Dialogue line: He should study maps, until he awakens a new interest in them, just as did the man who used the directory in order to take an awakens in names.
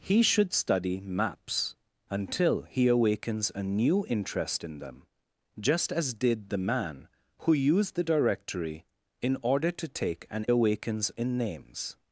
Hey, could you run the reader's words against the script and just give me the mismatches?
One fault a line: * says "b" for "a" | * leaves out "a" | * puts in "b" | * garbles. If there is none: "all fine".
all fine